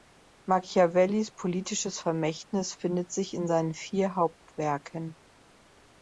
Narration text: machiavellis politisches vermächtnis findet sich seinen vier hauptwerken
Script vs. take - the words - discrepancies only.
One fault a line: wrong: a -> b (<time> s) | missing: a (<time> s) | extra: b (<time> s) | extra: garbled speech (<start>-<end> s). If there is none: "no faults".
extra: in (3.4 s)